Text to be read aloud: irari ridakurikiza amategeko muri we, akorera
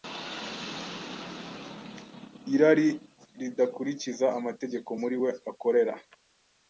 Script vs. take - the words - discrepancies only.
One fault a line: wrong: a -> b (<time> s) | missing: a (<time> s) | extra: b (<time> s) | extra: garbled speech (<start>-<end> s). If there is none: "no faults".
no faults